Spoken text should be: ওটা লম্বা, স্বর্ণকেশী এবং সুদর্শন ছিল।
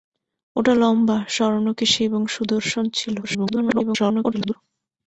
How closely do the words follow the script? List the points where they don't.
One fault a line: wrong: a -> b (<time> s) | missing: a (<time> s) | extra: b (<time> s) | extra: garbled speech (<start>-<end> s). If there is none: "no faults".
extra: garbled speech (3.2-4.6 s)